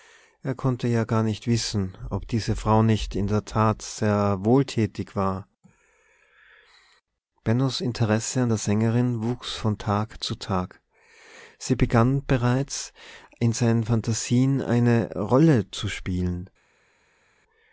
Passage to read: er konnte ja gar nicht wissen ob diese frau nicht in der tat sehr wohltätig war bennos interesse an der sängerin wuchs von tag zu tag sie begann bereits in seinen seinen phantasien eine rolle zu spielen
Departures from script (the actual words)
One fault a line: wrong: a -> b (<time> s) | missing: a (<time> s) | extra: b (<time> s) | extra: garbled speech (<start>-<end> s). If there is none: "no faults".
missing: seinen (13.8 s)